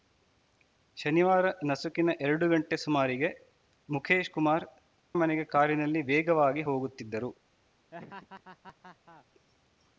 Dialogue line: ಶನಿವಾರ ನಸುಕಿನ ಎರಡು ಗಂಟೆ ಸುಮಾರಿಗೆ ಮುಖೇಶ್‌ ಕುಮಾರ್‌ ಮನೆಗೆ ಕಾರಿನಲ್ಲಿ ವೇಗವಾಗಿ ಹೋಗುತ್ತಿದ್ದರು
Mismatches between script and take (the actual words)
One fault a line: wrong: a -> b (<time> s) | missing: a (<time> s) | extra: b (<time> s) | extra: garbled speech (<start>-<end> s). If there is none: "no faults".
no faults